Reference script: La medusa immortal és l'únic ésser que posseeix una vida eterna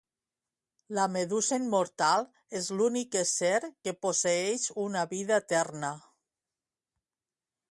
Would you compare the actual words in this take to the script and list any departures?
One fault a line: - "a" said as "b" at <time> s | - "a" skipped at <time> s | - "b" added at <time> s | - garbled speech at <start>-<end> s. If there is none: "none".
none